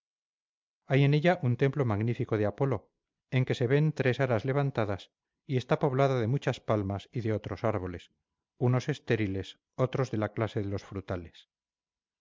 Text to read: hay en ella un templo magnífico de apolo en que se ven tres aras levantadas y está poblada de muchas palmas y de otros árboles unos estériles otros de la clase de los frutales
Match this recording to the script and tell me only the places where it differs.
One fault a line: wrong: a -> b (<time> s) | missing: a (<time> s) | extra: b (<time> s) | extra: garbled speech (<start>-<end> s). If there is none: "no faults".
no faults